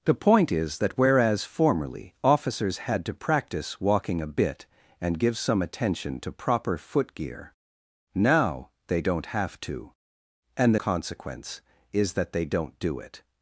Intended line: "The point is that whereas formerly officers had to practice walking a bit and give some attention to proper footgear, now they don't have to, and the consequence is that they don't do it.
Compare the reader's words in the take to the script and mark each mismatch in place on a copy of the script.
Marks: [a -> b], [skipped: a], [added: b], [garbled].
"The point is that whereas formerly officers had to practice walking a bit and give some attention to proper footgear, now they don't have to, and the consequence is that they don't do it.